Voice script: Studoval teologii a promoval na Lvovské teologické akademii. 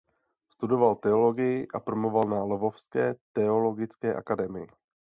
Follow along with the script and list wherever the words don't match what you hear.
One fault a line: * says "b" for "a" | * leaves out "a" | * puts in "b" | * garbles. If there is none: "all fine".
all fine